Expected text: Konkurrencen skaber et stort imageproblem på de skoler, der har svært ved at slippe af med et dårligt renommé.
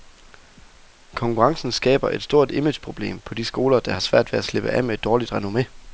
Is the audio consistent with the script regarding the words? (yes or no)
yes